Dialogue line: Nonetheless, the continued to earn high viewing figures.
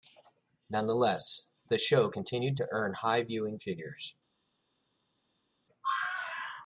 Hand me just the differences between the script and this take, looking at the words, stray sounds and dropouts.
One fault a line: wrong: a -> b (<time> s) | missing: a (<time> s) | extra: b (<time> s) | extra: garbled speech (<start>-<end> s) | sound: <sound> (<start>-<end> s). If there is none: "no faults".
extra: show (1.8 s)